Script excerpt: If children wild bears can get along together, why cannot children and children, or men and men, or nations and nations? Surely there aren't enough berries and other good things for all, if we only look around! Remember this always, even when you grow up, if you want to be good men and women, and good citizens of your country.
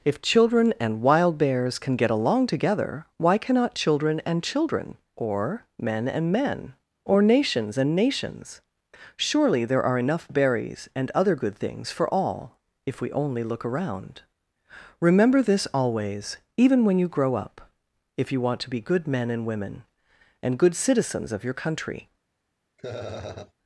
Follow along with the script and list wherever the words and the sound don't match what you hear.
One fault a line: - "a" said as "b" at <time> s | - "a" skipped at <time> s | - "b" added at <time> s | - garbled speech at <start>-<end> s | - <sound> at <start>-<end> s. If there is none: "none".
- "and" added at 0.8 s
- "aren't" said as "are" at 9.8 s
- laugh at 22.8-23.5 s